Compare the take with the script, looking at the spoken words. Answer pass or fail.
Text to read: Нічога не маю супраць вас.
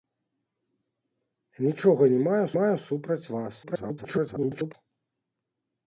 fail